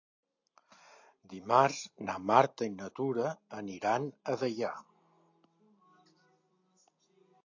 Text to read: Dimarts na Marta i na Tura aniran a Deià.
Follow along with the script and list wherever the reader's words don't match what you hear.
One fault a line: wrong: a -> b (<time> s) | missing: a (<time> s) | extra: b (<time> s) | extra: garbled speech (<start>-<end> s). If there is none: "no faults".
no faults